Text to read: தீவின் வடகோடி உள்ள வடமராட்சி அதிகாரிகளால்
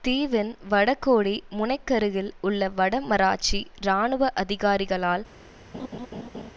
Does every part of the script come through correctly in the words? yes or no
no